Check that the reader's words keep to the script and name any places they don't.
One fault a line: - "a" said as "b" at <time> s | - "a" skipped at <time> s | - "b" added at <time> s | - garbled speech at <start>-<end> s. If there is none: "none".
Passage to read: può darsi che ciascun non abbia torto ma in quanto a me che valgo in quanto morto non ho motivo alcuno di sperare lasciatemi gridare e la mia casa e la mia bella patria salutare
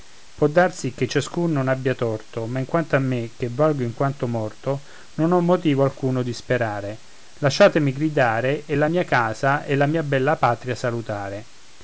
none